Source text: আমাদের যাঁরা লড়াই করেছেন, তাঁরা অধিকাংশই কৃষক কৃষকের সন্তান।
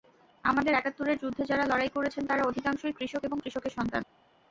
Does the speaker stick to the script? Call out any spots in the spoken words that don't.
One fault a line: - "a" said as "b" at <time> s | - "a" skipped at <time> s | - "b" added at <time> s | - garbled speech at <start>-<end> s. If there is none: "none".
- "একাত্তরের যুদ্ধে" added at 0.7 s
- "এবং" added at 3.2 s